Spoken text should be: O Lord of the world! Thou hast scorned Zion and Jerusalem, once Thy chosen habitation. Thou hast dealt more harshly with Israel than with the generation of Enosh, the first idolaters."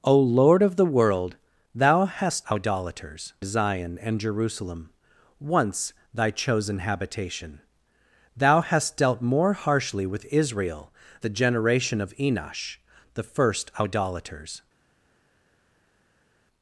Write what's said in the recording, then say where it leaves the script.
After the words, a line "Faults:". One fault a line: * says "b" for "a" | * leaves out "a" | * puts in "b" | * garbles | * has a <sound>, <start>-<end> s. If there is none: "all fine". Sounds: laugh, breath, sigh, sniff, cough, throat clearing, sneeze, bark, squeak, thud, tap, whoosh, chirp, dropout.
O Lord of the world! Thou hast idolaters Zion and Jerusalem, once Thy chosen habitation. Thou hast dealt more harshly with Israel the generation of Enosh, the first idolaters."
Faults:
* says "idolaters" for "scorned"
* leaves out "than with"